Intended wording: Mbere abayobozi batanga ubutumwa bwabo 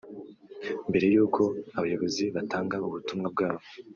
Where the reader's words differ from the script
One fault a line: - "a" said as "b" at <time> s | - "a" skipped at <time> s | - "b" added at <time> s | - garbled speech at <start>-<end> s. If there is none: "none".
- "y'uko" added at 1.1 s